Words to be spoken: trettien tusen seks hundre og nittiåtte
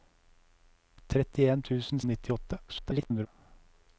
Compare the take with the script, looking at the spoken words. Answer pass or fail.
fail